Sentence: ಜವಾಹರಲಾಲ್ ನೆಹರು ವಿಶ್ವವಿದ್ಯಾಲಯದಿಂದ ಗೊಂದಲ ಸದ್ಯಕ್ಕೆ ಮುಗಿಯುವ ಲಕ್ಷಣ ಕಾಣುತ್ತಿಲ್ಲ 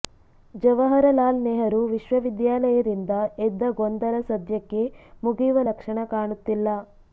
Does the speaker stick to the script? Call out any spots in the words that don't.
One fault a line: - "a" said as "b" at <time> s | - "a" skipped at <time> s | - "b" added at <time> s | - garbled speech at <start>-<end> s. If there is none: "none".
- "ಎದ್ದ" added at 3.5 s